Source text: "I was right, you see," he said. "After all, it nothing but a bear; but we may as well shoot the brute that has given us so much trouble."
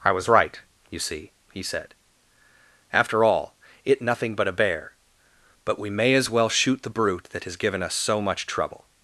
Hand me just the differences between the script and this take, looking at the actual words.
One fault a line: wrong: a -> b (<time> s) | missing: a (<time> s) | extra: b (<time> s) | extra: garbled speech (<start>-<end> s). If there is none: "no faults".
no faults